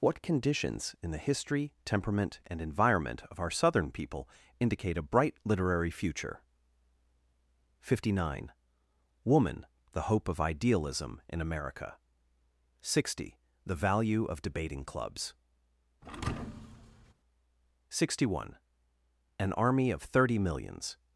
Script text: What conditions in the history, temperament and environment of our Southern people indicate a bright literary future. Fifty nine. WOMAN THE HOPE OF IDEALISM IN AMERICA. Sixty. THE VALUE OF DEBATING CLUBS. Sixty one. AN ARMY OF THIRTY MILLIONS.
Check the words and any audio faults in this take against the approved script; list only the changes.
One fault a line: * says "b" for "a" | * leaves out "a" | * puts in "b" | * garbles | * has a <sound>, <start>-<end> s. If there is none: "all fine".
* has a thud, 16.0-17.1 s